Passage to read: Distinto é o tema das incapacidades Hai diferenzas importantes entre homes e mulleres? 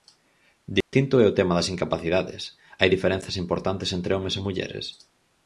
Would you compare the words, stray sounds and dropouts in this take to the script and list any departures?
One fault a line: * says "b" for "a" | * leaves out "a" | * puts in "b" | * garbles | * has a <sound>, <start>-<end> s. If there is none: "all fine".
* has a dropout, 0.8-0.9 s